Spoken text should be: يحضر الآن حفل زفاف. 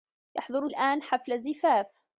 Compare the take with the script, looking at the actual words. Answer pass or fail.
pass